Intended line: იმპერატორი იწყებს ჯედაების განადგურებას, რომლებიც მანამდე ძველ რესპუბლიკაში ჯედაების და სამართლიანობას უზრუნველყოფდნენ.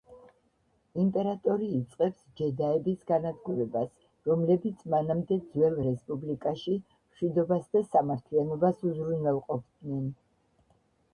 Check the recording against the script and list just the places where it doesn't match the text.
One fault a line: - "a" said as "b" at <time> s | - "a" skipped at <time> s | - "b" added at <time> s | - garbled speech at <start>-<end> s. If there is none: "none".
- "ჯედაების" said as "მშვიდობას" at 6.9 s